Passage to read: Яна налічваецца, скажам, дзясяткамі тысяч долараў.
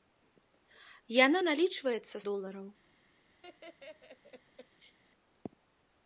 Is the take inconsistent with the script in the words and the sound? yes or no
yes